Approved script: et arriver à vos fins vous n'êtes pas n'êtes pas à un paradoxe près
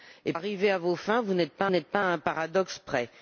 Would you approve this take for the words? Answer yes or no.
yes